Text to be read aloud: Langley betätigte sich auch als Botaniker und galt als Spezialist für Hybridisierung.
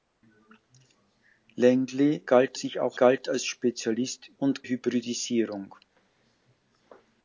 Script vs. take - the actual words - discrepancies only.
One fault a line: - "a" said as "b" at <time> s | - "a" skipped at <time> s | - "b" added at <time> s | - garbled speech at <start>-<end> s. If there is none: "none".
- "betätigte" said as "galt" at 2.3 s
- "als Botaniker und" skipped at 3.0 s
- "für" said as "und" at 4.4 s